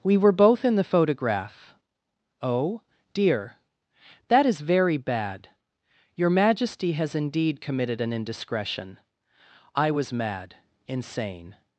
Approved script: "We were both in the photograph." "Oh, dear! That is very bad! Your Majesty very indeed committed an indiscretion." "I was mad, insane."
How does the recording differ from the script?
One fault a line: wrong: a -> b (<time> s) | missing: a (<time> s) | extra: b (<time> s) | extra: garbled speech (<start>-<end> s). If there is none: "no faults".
wrong: very -> has (6.9 s)